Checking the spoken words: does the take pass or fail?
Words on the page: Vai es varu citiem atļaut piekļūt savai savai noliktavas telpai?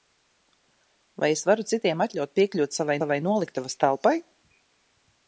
pass